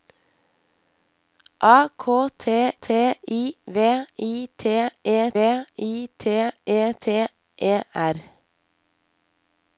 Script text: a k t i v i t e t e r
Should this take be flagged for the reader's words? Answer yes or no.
yes